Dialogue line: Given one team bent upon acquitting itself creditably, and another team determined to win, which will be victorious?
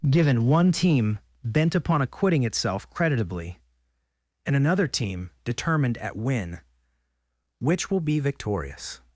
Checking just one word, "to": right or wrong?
wrong